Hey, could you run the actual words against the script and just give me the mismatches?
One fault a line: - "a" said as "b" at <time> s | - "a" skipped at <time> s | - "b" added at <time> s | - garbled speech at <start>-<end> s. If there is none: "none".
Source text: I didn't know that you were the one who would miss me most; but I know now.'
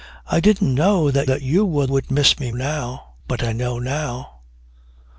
- "that" added at 1.2 s
- "the one who" skipped at 1.9 s
- "most" said as "now" at 2.5 s